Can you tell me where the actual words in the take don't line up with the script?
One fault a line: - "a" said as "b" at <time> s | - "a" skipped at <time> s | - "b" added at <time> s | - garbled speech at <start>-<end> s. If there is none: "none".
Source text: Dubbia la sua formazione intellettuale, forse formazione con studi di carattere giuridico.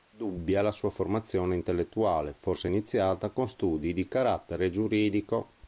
- "formazione" said as "iniziata" at 2.7 s